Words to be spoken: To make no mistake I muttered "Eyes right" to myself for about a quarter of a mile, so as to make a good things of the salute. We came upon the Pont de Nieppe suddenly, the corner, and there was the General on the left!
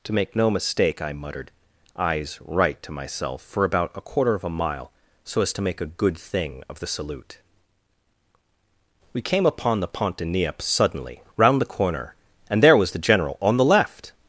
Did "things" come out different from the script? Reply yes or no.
yes